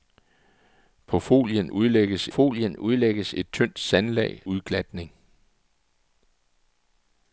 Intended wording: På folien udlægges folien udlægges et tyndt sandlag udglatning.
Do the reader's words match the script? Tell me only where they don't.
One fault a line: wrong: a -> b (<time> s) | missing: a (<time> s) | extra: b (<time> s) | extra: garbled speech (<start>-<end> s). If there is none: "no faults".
no faults